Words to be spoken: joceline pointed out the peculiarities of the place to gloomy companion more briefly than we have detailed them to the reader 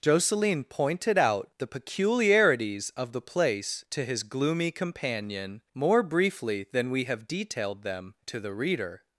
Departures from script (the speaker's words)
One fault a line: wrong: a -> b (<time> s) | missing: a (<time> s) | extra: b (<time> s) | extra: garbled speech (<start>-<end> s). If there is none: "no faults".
extra: his (4.1 s)